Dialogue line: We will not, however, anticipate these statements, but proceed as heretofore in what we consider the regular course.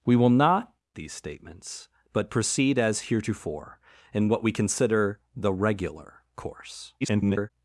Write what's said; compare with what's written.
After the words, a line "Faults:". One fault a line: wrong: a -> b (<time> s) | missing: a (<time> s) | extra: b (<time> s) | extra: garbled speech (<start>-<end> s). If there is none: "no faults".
We will not, these statements, but proceed as heretofore in what we consider the regular course. [garbled]
Faults:
missing: however anticipate (0.7 s)
extra: garbled speech (7.0-7.5 s)